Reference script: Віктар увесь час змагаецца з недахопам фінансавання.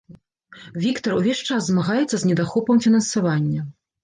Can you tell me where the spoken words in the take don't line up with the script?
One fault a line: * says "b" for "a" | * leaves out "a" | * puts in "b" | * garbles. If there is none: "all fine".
all fine